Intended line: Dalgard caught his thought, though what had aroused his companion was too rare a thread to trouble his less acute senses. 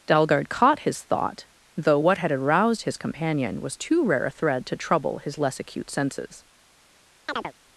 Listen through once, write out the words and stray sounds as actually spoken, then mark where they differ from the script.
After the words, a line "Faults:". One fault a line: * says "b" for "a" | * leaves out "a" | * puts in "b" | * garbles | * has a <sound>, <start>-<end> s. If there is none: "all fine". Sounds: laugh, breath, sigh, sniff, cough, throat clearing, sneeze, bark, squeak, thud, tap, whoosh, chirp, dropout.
Dalgard caught his thought, though what had aroused his companion was too rare a thread to trouble his less acute senses.
Faults:
* has a chirp, 7.3-7.5 s